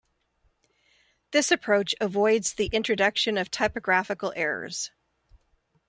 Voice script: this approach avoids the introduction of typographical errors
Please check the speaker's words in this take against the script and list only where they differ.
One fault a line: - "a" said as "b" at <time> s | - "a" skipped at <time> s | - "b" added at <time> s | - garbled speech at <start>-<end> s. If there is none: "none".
none